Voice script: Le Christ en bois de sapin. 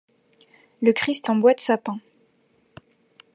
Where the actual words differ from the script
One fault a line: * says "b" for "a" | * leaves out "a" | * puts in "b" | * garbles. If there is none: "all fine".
all fine